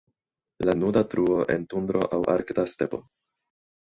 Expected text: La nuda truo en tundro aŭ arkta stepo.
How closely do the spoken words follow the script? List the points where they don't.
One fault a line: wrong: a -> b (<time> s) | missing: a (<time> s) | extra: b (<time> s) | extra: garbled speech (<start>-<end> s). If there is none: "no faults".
no faults